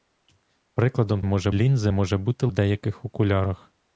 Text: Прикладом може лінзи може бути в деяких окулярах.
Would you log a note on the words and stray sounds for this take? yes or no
no